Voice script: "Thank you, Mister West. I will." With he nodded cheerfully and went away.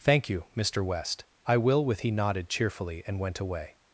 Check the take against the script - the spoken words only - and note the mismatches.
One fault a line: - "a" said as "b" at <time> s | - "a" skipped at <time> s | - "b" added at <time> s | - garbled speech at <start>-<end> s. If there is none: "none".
none